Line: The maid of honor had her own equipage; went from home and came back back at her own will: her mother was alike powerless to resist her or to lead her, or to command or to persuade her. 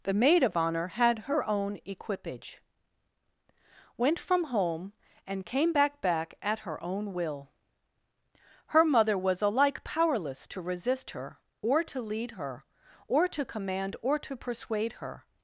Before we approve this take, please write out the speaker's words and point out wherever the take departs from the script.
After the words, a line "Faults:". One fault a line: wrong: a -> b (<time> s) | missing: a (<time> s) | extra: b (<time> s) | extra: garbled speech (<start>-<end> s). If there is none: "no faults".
The maid of honor had her own equipage; went from home and came back back at her own will: her mother was alike powerless to resist her or to lead her, or to command or to persuade her.
Faults:
no faults